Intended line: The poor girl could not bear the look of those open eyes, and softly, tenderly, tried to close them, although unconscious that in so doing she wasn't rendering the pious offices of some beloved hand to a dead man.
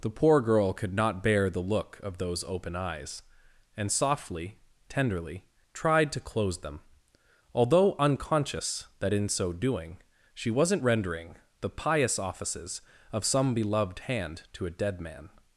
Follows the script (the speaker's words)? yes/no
yes